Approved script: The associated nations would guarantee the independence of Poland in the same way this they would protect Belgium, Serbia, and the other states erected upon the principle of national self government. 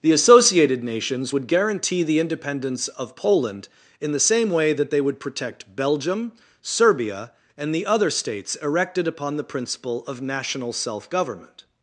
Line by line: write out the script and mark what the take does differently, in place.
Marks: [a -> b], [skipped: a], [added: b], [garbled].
The associated nations would guarantee the independence of Poland in the same way [this -> that] they would protect Belgium, Serbia, and the other states erected upon the principle of national self government.